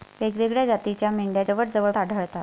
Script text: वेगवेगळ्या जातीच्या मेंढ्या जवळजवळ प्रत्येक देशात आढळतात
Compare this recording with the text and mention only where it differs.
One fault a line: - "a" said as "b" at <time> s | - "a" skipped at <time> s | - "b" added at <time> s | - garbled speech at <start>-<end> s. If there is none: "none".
- "प्रत्येक देशात" skipped at 1.9 s